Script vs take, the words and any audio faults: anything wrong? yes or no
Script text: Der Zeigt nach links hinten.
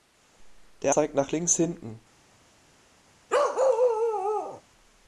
yes